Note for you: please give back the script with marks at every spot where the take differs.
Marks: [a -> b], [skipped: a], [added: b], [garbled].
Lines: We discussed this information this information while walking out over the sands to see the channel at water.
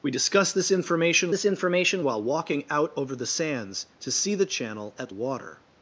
We discussed this information this information while walking out over the sands to see the channel at water.